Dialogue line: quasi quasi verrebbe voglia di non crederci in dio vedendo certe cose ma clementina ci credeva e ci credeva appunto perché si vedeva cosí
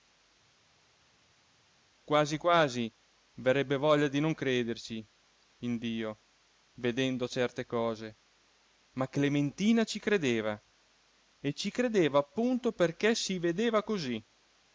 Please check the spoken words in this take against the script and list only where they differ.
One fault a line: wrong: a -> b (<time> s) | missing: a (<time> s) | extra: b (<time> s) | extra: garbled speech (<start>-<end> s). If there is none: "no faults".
no faults